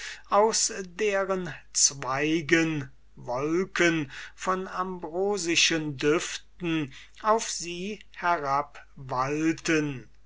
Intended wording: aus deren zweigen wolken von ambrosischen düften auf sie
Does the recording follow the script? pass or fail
pass